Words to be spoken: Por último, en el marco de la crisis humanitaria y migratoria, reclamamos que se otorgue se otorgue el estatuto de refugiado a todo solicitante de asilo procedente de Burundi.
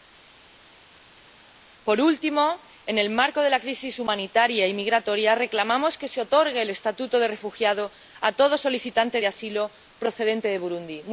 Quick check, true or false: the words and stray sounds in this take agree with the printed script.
false